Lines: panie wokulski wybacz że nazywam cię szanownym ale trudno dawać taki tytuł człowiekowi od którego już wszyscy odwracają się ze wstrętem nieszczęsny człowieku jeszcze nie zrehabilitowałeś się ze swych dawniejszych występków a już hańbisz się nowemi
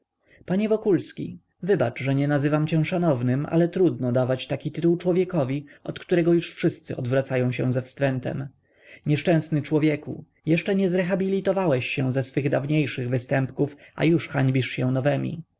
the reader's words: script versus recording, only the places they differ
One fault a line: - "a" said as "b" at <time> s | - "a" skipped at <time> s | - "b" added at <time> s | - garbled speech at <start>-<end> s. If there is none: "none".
- "nie" added at 2.1 s